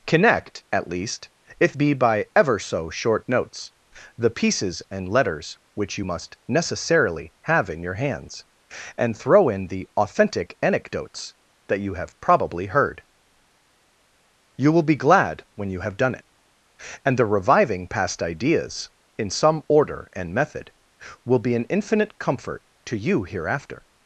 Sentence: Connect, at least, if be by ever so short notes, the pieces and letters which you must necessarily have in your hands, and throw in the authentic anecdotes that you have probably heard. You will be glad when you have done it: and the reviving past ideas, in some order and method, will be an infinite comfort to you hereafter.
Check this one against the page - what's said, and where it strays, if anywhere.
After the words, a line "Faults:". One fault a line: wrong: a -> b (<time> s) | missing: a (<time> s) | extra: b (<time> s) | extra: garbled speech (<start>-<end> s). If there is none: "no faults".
Connect, at least, if be by ever so short notes, the pieces and letters which you must necessarily have in your hands, and throw in the authentic anecdotes that you have probably heard. You will be glad when you have done it: and the reviving past ideas, in some order and method, will be an infinite comfort to you hereafter.
Faults:
no faults